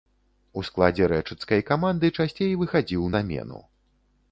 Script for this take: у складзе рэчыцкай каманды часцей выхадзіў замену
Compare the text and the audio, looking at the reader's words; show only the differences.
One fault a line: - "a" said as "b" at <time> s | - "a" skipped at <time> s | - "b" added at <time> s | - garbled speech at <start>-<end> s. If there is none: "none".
none